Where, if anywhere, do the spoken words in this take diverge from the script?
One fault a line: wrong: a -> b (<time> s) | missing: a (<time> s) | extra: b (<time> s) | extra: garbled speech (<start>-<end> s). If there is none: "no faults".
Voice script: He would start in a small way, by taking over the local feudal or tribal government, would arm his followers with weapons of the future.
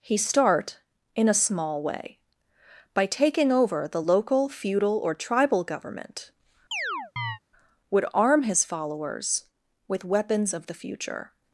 missing: would (0.2 s)